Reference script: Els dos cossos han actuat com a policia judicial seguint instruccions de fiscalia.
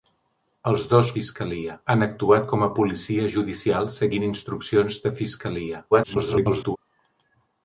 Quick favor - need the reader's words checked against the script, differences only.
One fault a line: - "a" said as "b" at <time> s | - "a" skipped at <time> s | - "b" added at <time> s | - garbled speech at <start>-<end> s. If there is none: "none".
- "cossos" said as "fiscalia" at 1.2 s
- garbled speech at 5.9-6.8 s